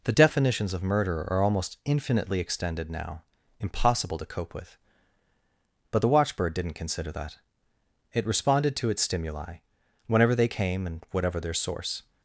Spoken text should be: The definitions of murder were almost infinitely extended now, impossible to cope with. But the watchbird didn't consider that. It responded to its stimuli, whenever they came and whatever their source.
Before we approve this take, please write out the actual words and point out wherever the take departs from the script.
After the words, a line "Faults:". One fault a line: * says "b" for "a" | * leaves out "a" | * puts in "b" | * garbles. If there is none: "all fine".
The definitions of murder are almost infinitely extended now, impossible to cope with. But the watchbird didn't consider that. It responded to its stimuli, whenever they came and whatever their source.
Faults:
* says "are" for "were"